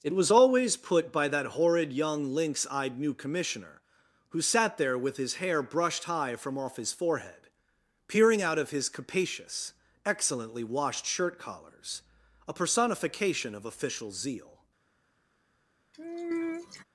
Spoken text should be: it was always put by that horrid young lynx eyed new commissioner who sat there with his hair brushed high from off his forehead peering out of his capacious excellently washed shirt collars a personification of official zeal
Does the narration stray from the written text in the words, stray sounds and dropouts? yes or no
yes